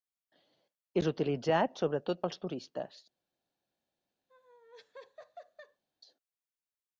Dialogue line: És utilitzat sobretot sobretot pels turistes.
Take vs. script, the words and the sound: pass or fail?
fail